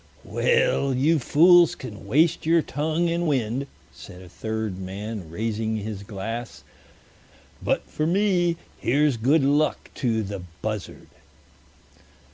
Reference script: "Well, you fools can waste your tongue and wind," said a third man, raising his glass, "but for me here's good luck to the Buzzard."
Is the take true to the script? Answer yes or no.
yes